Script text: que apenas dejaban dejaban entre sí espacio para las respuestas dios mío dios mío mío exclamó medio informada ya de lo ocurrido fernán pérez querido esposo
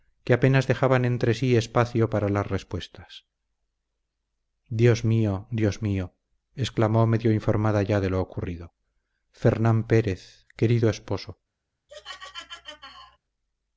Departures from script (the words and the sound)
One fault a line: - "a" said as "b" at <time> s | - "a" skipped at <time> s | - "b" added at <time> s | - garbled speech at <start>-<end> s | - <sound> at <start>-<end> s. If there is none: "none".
- "dejaban" skipped at 1.1 s
- "mío" skipped at 6.2 s
- laugh at 11.9-13.2 s